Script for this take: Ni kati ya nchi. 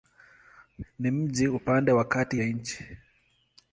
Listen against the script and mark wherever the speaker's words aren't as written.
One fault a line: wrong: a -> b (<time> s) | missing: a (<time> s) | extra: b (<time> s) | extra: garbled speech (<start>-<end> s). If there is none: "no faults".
extra: mji upande wa (1.1 s)